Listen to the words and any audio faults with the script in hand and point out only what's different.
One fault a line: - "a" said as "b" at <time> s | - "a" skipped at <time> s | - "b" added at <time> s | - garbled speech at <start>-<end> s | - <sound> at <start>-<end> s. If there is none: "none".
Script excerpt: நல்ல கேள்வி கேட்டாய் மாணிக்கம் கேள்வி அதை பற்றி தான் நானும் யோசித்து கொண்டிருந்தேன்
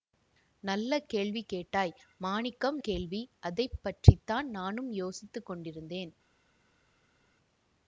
none